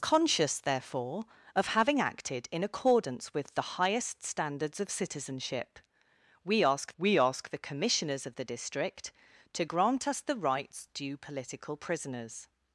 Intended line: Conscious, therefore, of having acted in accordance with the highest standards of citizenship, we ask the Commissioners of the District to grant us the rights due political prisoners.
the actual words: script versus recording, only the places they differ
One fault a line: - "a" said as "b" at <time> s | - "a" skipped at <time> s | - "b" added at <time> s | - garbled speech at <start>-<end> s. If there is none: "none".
- "we ask" added at 7.0 s